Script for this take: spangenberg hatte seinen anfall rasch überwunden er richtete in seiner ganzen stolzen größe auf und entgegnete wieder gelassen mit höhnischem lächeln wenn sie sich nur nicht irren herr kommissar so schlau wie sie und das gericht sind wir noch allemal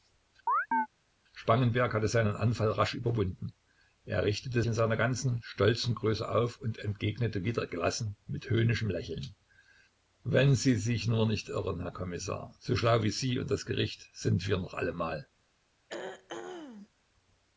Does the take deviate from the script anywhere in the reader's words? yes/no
no